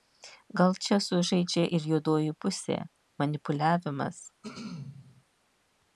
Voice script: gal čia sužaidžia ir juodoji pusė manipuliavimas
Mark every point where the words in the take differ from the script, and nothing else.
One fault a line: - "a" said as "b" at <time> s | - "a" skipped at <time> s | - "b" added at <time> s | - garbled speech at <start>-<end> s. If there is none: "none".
none